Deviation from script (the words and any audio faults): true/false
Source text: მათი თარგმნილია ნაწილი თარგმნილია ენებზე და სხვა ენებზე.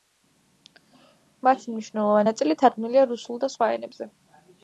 true